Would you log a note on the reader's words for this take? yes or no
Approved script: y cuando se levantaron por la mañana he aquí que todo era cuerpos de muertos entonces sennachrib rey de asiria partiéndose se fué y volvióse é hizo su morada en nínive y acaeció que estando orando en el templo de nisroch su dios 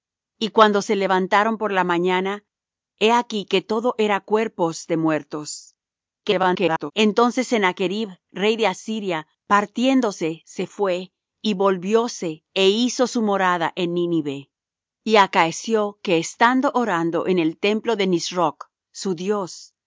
yes